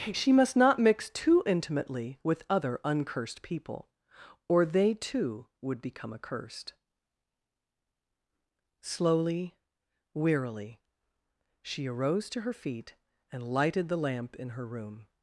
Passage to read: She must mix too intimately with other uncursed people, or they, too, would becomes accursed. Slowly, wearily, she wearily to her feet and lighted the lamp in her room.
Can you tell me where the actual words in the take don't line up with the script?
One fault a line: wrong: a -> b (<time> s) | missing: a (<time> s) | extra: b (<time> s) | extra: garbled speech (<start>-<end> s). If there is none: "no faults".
extra: not (0.6 s)
wrong: becomes -> become (5.8 s)
wrong: wearily -> arose (11.8 s)